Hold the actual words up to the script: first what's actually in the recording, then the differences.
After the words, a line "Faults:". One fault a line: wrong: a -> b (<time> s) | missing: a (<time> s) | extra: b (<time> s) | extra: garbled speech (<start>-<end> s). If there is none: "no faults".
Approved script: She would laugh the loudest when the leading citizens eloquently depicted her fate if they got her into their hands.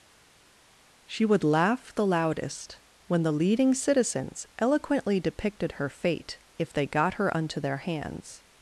She would laugh the loudest when the leading citizens eloquently depicted her fate if they got her unto their hands.
Faults:
wrong: into -> unto (7.4 s)